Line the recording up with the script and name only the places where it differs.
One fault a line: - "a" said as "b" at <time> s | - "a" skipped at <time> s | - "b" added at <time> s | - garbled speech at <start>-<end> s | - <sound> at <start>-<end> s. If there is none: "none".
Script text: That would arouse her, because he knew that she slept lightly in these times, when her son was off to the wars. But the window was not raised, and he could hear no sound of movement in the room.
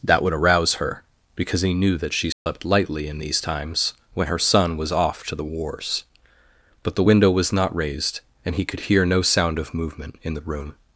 - dropout at 2.3-2.5 s